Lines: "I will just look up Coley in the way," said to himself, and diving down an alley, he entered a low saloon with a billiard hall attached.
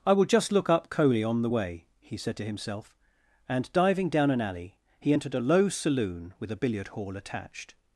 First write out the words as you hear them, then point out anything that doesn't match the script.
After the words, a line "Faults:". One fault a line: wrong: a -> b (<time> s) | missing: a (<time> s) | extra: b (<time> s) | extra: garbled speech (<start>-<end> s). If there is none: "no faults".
"I will just look up Coley on the way," he said to himself, and diving down an alley, he entered a low saloon with a billiard hall attached.
Faults:
wrong: in -> on (1.2 s)
extra: he (2.0 s)